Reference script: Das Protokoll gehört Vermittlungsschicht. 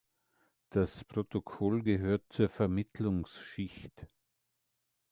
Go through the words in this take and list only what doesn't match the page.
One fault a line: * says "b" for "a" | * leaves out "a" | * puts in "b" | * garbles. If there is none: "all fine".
* puts in "zur"